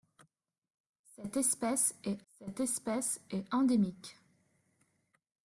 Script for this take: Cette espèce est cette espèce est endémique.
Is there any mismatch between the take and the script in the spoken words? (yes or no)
no